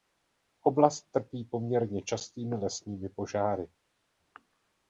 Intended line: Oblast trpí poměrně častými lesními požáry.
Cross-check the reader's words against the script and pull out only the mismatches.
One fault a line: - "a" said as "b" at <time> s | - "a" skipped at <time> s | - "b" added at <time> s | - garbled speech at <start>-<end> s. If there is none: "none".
none